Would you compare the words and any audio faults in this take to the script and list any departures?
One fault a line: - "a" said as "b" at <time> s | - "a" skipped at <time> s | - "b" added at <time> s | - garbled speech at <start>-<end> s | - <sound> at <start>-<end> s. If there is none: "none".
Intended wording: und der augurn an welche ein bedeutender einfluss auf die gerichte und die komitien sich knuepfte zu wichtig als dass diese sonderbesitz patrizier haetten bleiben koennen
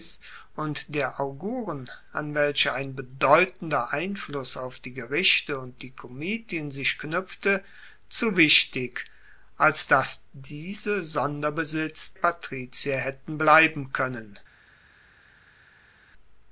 none